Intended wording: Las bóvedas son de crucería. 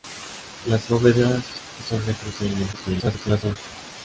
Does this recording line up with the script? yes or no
no